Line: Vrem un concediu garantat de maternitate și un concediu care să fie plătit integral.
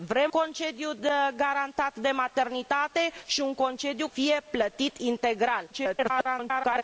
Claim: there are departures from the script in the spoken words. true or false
true